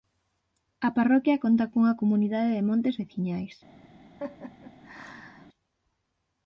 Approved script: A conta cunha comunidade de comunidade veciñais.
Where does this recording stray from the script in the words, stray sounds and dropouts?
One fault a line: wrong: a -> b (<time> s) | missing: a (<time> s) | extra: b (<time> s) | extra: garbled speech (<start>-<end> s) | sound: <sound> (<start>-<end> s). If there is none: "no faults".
extra: parroquia (1.0 s)
wrong: comunidade -> montes (2.7 s)
sound: laugh (4.2-5.5 s)